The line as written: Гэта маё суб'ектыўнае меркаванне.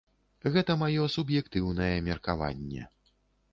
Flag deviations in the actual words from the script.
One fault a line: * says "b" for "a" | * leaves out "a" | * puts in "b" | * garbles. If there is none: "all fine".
all fine